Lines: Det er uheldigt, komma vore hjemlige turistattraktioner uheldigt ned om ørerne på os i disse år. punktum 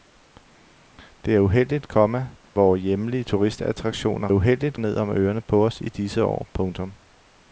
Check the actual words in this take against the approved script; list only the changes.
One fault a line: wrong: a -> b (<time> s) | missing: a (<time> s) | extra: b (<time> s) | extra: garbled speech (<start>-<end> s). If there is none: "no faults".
no faults